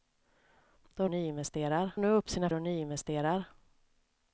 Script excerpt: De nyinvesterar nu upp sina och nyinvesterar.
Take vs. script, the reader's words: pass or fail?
pass